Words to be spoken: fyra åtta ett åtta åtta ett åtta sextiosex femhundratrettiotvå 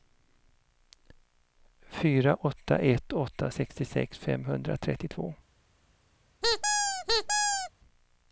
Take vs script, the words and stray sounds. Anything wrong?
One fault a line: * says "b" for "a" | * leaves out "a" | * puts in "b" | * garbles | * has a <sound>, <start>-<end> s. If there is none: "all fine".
* leaves out "åtta ett åtta"
* has a squeak, 6.4-7.7 s